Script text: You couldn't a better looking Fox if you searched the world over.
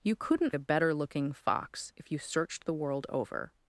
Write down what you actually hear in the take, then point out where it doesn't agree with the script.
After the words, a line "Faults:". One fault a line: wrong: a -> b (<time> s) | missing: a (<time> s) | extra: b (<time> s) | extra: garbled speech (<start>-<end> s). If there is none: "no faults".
You couldn't a better looking Fox if you searched the world over.
Faults:
no faults